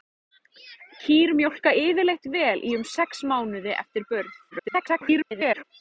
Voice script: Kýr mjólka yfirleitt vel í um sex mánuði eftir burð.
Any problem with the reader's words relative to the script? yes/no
yes